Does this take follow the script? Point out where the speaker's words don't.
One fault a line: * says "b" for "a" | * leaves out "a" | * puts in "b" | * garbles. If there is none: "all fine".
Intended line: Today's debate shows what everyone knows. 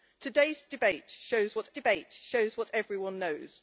* puts in "debate shows what"